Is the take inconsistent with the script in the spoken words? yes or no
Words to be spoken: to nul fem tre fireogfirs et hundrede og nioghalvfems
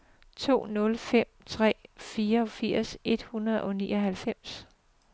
no